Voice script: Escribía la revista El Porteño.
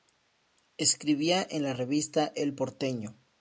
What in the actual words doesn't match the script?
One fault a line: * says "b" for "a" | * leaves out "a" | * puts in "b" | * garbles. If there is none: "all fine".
* puts in "en"